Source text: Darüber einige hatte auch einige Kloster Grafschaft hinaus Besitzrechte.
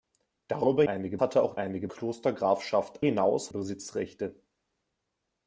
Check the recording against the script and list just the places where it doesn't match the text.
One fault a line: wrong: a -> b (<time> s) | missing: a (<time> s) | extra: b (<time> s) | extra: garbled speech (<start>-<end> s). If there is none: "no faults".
no faults